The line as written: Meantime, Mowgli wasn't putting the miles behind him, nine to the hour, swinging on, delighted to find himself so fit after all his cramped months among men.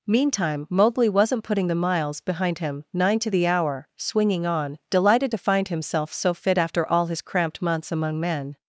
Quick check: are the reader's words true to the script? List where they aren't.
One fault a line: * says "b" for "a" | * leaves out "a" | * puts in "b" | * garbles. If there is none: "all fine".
all fine